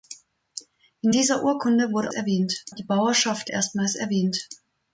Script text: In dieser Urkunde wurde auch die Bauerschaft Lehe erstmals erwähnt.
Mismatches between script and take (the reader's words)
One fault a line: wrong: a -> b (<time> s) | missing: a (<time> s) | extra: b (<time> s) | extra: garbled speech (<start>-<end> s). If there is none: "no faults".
wrong: auch -> erwähnt (2.1 s)
missing: Lehe (3.5 s)